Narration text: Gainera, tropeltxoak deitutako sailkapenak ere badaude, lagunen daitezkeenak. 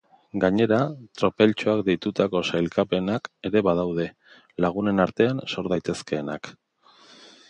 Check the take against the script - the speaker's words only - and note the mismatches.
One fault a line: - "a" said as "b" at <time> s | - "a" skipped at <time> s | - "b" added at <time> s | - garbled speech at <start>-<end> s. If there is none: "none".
- "artean sor" added at 5.1 s